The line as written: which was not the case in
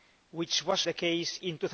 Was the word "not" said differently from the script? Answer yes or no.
yes